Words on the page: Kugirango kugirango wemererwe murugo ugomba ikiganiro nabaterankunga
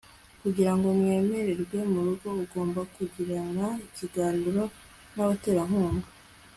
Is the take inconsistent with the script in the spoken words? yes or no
yes